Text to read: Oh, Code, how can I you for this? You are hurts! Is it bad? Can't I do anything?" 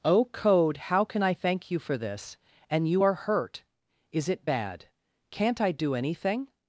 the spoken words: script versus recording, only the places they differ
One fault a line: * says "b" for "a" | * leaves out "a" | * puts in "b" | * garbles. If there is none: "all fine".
* puts in "thank"
* puts in "And"
* says "hurt" for "hurts"